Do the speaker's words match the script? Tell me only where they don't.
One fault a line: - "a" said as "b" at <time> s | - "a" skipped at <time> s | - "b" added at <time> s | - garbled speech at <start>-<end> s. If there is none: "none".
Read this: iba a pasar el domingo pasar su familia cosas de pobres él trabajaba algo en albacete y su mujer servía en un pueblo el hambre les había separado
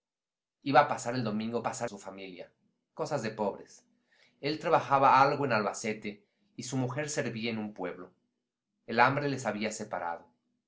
none